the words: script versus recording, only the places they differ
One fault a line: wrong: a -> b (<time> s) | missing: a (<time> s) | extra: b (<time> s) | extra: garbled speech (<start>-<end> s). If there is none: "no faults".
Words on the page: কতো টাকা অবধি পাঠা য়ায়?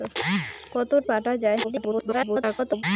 missing: টাকা অবধি (0.9 s)
extra: garbled speech (1.6-2.8 s)